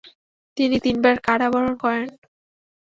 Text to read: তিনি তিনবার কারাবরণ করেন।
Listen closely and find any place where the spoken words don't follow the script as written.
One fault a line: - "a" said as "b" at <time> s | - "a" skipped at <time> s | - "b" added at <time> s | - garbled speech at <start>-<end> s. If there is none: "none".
none